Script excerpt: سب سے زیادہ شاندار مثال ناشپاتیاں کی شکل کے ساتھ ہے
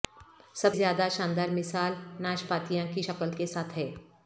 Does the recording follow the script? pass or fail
fail